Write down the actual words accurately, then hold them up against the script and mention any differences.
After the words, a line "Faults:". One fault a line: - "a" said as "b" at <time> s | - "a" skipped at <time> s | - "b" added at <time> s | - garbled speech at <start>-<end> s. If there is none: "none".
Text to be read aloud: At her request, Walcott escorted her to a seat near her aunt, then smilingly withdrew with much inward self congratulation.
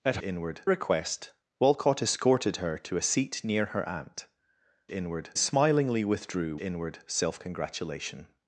At inward request, Walcott escorted her to a seat near her aunt, inward smilingly withdrew inward self congratulation.
Faults:
- "her" said as "inward" at 0.2 s
- "then" said as "inward" at 4.9 s
- "with much" skipped at 6.6 s